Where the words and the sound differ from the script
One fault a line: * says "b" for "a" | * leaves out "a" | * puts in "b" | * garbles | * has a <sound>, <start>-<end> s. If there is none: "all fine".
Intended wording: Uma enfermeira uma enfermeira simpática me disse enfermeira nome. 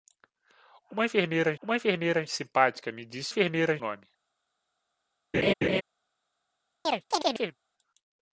* has a laugh, 5.3-5.8 s
* has a chirp, 6.8-7.6 s